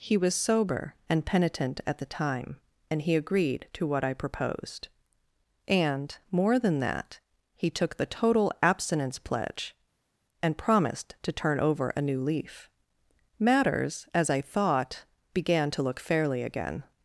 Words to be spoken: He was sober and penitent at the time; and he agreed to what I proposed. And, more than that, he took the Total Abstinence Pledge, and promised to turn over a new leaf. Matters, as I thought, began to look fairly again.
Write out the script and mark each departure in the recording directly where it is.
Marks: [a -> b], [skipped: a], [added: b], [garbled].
He was sober and penitent at the time; and he agreed to what I proposed. And, more than that, he took the Total Abstinence Pledge, and promised to turn over a new leaf. Matters, as I thought, began to look fairly again.